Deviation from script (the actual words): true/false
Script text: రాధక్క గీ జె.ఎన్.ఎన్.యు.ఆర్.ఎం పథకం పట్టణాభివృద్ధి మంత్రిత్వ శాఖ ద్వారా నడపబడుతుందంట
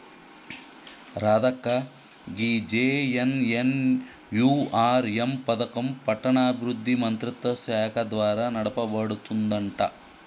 false